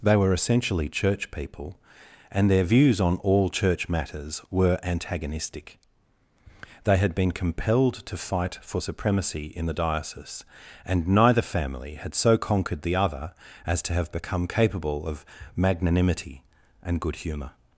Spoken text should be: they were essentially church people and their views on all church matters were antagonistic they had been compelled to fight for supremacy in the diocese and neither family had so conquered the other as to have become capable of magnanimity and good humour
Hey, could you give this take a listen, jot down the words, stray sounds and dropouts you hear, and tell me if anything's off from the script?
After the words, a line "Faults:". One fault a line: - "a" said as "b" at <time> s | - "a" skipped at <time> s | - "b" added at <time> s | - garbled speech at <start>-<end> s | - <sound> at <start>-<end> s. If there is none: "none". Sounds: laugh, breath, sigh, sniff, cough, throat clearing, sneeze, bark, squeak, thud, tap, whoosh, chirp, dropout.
they were essentially church people and their views on all church matters were antagonistic they had been compelled to fight for supremacy in the diocese and neither family had so conquered the other as to have become capable of magnanimity and good humour
Faults:
none